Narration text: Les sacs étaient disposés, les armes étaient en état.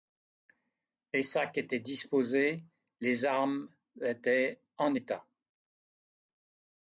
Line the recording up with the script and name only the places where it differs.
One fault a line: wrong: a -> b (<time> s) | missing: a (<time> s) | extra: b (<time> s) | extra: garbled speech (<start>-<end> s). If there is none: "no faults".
no faults